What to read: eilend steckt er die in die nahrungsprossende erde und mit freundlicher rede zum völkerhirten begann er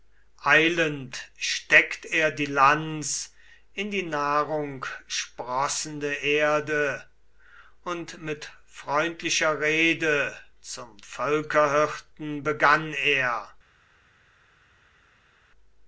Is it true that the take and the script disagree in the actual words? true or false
true